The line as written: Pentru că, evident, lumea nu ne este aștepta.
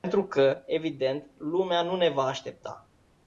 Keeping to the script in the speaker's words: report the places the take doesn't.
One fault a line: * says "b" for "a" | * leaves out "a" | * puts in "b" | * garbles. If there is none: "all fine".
* says "va" for "este"